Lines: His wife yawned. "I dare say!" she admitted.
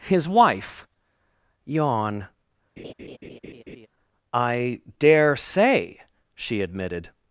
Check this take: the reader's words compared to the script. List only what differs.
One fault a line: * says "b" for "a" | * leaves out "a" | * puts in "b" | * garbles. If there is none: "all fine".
* says "yawn" for "yawned"